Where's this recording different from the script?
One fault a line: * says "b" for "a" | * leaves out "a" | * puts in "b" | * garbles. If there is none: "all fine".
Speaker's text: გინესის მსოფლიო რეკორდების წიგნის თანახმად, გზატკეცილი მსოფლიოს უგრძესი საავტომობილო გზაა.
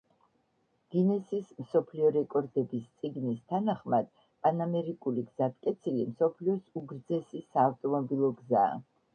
* puts in "პანამერიკული"